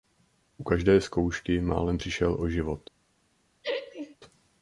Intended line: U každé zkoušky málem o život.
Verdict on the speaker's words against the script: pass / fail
fail